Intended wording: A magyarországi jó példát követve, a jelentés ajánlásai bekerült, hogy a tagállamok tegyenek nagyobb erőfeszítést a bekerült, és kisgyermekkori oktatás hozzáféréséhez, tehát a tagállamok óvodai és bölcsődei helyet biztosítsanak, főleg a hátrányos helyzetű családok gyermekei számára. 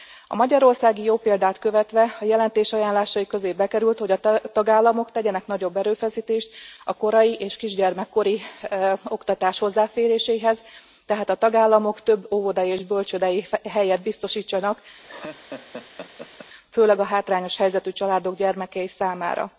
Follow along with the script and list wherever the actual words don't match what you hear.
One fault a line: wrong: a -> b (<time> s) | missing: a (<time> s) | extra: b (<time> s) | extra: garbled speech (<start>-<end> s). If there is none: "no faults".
extra: közé (3.3 s)
wrong: bekerült -> korai (6.9 s)
extra: több (12.0 s)